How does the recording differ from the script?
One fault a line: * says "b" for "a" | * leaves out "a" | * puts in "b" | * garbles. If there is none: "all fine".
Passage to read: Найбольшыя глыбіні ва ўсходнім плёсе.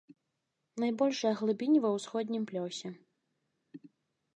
all fine